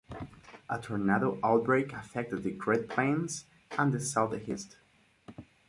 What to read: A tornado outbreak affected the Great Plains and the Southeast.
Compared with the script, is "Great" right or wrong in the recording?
right